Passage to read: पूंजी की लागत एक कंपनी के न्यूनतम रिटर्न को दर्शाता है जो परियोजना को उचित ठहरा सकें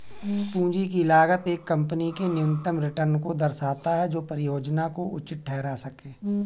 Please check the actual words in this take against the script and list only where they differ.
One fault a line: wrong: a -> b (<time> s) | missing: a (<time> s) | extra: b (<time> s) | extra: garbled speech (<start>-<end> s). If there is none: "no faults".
no faults